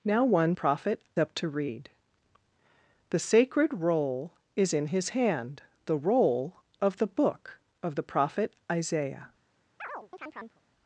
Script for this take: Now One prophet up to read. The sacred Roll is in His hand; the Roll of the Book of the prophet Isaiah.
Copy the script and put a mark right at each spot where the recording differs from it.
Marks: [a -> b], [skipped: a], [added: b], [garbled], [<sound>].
Now One prophet up to read. The sacred Roll is in His hand; the Roll of the Book of the prophet Isaiah. [chirp]